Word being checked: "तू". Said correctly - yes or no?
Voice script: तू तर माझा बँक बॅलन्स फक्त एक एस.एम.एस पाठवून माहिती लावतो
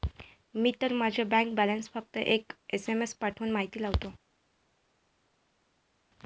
no